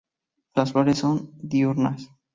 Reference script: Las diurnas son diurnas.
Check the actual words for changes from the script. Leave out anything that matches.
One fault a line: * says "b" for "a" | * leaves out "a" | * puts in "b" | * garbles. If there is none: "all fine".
* says "flores" for "diurnas"